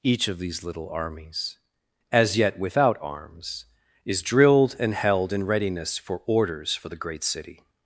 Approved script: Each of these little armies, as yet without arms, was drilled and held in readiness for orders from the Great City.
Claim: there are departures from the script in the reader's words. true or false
true